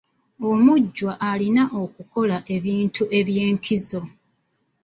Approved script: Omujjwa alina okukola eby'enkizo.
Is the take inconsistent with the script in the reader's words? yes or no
yes